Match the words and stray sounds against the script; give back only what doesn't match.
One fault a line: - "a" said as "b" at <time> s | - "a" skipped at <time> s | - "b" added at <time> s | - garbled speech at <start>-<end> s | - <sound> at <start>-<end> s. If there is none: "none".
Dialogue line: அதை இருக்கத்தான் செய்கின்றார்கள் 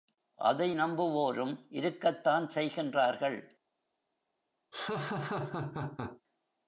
- "நம்புவோரும்" added at 0.7 s
- laugh at 4.7-6.2 s